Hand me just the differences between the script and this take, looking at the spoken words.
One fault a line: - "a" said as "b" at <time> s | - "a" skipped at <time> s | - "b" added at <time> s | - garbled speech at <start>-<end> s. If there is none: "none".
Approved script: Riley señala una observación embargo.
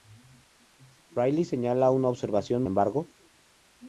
none